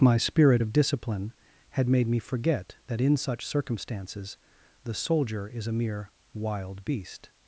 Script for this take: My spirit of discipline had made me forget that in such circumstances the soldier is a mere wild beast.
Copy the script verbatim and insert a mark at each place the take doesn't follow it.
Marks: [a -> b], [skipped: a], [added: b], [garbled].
My spirit of discipline had made me forget that in such circumstances the soldier is a mere wild beast.